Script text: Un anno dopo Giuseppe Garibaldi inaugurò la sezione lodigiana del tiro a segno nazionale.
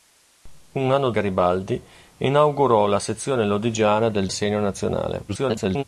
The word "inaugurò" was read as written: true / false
true